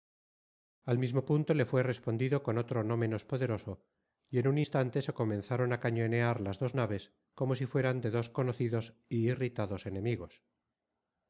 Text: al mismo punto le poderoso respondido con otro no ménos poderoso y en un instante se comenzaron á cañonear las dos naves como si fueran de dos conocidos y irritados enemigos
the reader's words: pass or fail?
fail